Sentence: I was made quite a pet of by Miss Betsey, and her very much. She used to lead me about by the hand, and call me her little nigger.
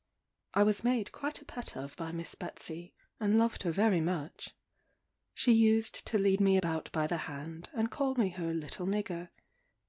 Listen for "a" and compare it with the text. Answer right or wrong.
right